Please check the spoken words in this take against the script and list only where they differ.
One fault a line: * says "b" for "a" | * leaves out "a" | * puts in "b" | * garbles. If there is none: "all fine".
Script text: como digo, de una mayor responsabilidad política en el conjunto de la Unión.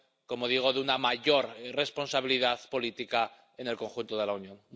all fine